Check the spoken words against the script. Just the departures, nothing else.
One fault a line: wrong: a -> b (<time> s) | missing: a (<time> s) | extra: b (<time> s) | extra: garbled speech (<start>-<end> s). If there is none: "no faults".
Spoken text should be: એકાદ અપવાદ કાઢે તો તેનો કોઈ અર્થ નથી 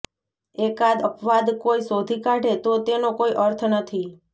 extra: કોઈ શોધી (1.6 s)